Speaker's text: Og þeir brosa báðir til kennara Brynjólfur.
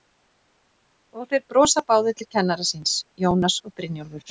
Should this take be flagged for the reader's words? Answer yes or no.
yes